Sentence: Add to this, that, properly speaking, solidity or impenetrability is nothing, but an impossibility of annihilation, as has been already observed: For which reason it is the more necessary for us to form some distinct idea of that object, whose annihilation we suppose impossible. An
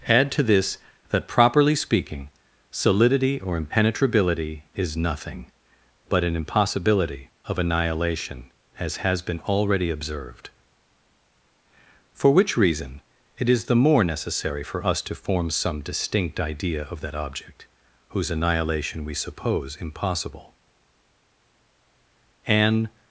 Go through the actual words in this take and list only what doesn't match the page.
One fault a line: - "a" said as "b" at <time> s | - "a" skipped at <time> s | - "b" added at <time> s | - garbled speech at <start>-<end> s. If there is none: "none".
none